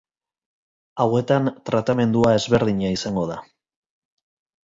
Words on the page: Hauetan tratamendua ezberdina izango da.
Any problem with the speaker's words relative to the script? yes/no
no